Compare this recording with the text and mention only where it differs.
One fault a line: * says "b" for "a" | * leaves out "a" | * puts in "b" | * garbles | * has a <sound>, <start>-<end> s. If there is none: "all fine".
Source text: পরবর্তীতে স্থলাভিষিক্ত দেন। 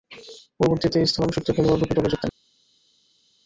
* puts in "খেলোয়াড়রূপে দলে যোগ"